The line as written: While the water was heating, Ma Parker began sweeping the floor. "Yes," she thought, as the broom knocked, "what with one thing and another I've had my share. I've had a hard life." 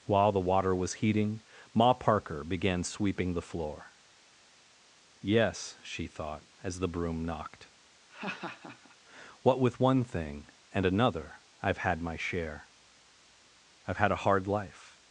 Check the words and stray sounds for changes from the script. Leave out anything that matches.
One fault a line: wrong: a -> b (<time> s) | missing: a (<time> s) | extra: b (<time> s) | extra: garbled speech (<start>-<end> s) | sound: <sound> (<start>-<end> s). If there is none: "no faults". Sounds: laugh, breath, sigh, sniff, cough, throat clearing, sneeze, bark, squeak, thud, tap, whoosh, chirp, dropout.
sound: laugh (8.1-9.0 s)